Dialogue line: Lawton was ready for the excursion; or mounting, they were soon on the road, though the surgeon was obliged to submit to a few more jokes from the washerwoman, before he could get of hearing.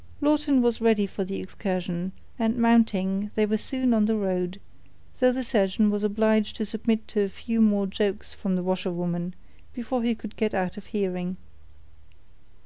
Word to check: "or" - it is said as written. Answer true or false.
false